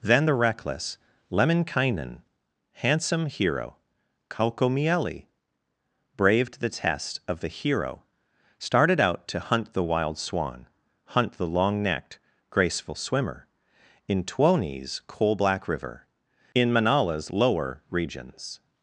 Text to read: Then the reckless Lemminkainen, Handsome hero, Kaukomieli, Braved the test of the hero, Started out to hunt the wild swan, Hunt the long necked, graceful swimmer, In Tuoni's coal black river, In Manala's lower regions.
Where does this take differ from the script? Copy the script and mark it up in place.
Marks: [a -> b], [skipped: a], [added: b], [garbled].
Then the reckless Lemminkainen, Handsome hero, Kaukomieli, Braved the test of the hero, Started out to hunt the wild swan, Hunt the long necked, graceful swimmer, In Tuoni's coal black river, In Manala's lower regions.